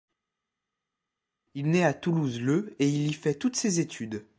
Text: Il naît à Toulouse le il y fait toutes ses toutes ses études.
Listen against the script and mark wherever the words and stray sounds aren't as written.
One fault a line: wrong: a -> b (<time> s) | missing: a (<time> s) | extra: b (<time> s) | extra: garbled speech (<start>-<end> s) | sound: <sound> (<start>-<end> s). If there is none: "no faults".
extra: et (2.8 s)
missing: toutes ses (3.8 s)